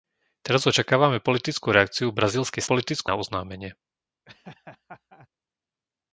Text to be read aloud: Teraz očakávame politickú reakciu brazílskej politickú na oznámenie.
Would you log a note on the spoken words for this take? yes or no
no